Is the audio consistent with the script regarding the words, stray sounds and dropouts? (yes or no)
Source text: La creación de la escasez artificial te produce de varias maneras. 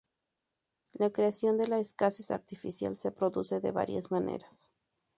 no